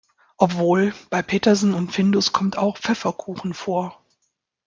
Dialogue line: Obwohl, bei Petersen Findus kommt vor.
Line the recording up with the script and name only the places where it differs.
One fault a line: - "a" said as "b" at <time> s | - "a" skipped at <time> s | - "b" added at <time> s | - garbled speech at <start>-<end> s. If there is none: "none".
- "und" added at 1.8 s
- "auch Pfefferkuchen" added at 2.6 s